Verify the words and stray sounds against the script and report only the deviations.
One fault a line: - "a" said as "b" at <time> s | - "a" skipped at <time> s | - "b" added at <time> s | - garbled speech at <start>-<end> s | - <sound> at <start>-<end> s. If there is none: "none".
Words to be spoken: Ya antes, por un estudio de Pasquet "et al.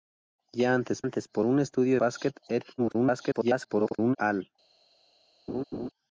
- "antes" added at 1.0 s
- "de" skipped at 2.0 s
- garbled speech at 2.8-4.2 s
- laugh at 5.5-5.9 s